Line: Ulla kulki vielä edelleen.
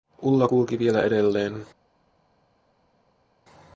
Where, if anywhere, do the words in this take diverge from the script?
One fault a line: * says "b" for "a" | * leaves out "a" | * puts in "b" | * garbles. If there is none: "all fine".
all fine